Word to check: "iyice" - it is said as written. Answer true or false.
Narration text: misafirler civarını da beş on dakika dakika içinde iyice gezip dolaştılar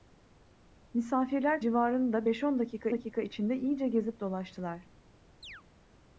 true